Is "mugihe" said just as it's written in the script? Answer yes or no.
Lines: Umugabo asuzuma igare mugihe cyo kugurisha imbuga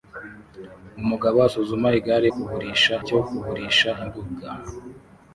no